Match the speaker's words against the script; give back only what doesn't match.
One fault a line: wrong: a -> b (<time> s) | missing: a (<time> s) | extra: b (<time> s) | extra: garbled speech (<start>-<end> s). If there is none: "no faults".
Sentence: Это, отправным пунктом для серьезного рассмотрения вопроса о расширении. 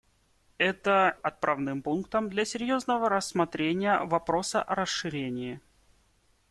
no faults